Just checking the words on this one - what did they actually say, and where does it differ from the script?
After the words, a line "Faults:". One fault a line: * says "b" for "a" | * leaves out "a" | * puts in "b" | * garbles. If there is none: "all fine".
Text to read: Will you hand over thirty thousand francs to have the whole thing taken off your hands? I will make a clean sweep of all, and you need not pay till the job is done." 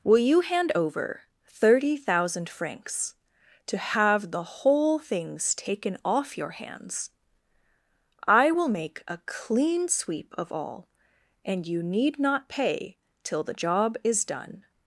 Will you hand over thirty thousand francs to have the whole things taken off your hands? I will make a clean sweep of all, and you need not pay till the job is done."
Faults:
* says "things" for "thing"